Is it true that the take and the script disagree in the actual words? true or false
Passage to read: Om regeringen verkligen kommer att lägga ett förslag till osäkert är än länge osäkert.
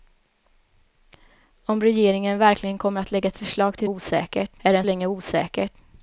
false